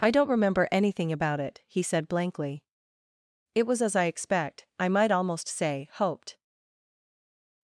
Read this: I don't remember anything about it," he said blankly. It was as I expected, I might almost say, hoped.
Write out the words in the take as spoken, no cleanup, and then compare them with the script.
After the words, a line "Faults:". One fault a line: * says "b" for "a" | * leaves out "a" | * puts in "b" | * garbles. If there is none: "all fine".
I don't remember anything about it," he said blankly. It was as I expect, I might almost say, hoped.
Faults:
* says "expect" for "expected"